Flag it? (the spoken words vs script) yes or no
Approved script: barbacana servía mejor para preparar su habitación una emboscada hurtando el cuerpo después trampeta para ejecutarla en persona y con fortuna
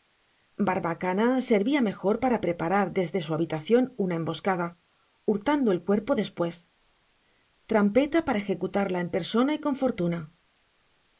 yes